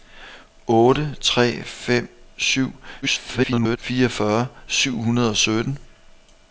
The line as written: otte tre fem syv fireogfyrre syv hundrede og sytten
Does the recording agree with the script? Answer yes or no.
no